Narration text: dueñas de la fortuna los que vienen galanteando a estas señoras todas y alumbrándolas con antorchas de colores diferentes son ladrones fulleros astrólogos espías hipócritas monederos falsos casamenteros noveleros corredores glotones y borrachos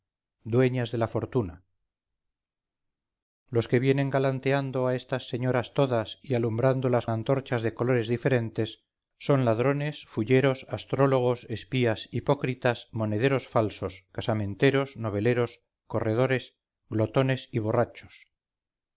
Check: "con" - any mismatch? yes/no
yes